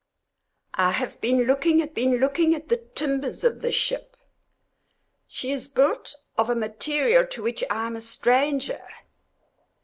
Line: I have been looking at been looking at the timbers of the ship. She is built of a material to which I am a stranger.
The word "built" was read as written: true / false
true